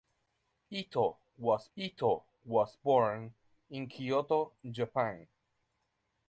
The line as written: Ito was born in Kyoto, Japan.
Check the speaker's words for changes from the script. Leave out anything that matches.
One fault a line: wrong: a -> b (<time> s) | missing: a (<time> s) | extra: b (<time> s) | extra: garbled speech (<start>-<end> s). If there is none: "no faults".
extra: ito was (1.8 s)